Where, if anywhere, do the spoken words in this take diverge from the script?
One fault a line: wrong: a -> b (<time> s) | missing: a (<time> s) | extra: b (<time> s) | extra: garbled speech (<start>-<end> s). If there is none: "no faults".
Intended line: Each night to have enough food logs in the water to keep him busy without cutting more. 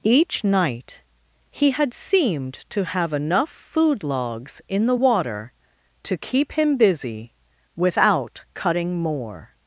extra: he had seemed (1.5 s)